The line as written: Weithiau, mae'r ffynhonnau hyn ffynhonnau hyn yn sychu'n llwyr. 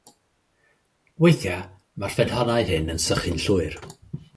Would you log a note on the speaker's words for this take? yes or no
yes